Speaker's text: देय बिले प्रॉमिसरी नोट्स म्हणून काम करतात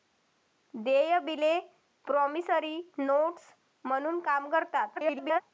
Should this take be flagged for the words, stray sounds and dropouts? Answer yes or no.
yes